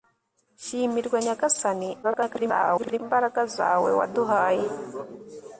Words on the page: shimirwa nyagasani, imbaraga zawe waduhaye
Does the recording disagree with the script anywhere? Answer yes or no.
yes